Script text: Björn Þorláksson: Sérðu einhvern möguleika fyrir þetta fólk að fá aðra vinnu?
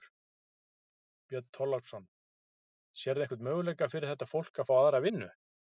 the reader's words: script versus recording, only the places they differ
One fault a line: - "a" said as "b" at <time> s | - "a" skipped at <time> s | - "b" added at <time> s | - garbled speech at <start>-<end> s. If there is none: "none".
none